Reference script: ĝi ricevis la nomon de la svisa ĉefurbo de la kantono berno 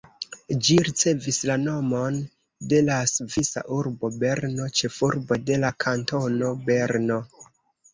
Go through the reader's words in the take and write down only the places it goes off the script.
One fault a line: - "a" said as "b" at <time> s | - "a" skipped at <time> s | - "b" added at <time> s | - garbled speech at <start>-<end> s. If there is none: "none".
- "urbo berno" added at 3.8 s